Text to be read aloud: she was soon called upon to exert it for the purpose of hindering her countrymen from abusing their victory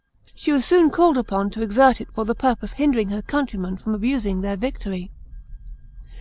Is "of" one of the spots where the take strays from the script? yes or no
yes